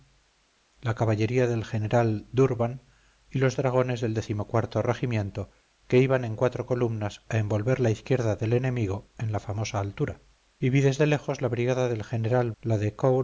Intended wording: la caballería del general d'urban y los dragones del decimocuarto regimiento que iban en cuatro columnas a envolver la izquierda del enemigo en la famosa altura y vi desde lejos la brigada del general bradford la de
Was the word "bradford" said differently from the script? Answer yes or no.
yes